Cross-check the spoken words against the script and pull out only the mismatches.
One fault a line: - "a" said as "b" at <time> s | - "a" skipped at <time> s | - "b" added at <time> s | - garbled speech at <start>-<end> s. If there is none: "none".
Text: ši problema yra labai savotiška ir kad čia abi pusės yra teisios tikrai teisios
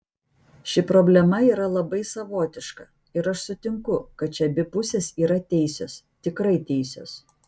- "aš sutinku" added at 3.3 s